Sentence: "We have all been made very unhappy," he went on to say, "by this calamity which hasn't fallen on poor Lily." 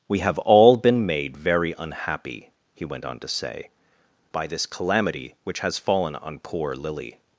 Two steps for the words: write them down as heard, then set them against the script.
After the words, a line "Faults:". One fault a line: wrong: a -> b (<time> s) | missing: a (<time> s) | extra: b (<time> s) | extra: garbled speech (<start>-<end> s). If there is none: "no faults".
"We have all been made very unhappy," he went on to say, "by this calamity which has fallen on poor Lily."
Faults:
wrong: hasn't -> has (5.6 s)